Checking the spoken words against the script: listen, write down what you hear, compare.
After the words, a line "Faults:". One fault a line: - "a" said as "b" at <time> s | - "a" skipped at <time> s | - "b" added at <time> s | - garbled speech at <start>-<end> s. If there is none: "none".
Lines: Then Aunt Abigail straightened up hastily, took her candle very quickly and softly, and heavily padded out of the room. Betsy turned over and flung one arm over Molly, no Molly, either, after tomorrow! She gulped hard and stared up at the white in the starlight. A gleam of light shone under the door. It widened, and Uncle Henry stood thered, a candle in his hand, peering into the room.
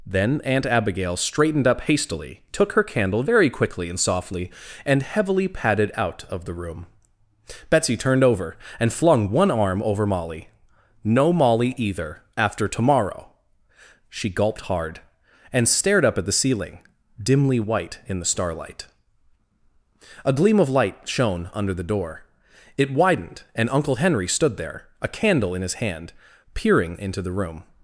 Then Aunt Abigail straightened up hastily, took her candle very quickly and softly, and heavily padded out of the room. Betsy turned over and flung one arm over Molly, no Molly, either, after tomorrow! She gulped hard and stared up at the ceiling, dimly white in the starlight. A gleam of light shone under the door. It widened, and Uncle Henry stood there, a candle in his hand, peering into the room.
Faults:
- "ceiling dimly" added at 16.3 s
- "thered" said as "there" at 24.6 s